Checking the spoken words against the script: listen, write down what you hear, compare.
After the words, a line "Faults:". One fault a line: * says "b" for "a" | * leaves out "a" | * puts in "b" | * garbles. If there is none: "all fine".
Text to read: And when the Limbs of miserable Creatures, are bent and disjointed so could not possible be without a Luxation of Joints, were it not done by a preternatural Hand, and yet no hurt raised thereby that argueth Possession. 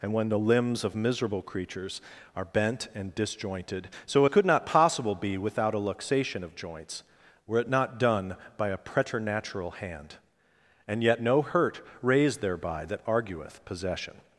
And when the Limbs of miserable Creatures, are bent and disjointed so could not possible be without a Luxation of Joints, were it not done by a preternatural Hand, and yet no hurt raised thereby that argueth Possession.
Faults:
all fine